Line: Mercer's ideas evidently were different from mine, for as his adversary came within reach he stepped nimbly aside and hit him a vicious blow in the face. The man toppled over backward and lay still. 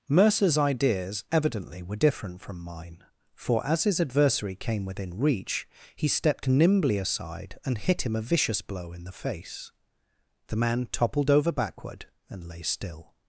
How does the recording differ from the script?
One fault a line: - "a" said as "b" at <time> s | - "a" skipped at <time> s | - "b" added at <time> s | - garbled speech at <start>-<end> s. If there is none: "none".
none